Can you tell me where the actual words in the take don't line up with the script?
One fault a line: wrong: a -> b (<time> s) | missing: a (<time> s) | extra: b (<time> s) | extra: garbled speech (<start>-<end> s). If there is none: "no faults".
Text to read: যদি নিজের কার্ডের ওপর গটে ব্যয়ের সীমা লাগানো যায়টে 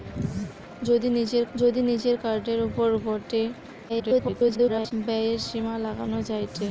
extra: যদি নিজের (1.5 s)
extra: garbled speech (3.9-4.9 s)